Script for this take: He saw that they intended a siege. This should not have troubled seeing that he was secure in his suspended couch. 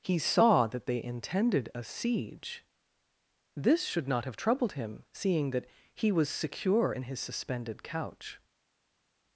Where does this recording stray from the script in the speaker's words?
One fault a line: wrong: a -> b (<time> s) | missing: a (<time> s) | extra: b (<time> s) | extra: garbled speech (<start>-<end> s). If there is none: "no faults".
extra: him (4.7 s)